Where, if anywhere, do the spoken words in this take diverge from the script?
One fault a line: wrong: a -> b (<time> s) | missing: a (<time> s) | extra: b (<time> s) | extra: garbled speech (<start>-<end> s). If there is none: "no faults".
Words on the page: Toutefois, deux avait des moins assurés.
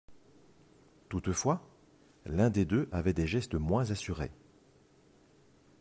extra: l'un des (2.2 s)
extra: gestes (3.3 s)